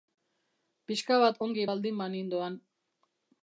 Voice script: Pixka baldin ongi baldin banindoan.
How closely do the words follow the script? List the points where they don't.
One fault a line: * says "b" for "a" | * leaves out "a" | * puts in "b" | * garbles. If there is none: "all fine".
* says "bat" for "baldin"